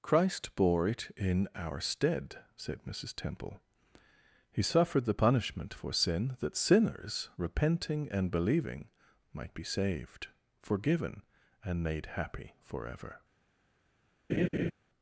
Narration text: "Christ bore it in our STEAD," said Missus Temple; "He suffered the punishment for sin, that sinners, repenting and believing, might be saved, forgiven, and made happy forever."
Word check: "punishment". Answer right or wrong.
right